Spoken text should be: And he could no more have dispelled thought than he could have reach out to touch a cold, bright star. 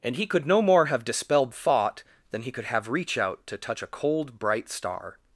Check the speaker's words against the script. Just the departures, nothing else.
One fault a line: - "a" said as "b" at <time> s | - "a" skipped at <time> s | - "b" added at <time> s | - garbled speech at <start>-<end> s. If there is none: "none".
none